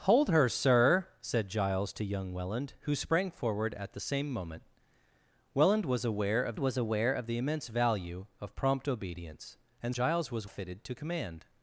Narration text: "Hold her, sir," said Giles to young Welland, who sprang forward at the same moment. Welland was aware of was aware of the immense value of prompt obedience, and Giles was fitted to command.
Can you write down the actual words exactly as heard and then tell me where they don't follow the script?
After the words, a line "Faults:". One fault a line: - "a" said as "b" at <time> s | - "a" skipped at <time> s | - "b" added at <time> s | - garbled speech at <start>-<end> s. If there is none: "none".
"Hold her, sir," said Giles to young Welland, who sprang forward at the same moment. Welland was aware of was aware of the immense value of prompt obedience, and Giles was fitted to command.
Faults:
none